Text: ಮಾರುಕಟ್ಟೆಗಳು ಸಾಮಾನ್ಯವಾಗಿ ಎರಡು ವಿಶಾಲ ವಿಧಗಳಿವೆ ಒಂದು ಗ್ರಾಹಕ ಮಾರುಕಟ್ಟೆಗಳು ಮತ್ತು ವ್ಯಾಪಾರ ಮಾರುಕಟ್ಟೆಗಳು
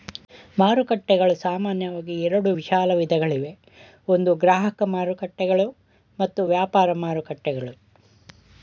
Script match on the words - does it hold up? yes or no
yes